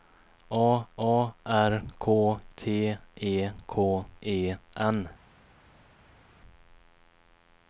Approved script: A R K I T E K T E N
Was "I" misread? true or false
true